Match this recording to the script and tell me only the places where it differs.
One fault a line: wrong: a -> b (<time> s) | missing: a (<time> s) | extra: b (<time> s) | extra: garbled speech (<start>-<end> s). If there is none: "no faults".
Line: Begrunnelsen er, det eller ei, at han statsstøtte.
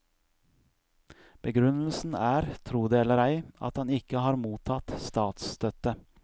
extra: tro (2.7 s)
extra: ikke har mottatt (3.9 s)